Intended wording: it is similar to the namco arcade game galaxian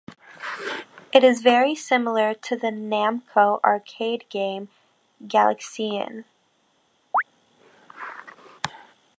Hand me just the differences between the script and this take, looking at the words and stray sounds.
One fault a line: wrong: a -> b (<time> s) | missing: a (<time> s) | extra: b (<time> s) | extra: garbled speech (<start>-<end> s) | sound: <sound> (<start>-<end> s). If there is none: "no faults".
extra: very (1.4 s)
sound: chirp (7.1-7.2 s)